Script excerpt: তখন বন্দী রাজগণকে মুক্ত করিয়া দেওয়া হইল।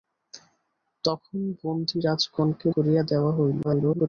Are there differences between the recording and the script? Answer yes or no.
yes